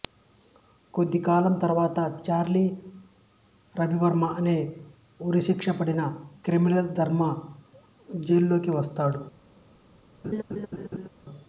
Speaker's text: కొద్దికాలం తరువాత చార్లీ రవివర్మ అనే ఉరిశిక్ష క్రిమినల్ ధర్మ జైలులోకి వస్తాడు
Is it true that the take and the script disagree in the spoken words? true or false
true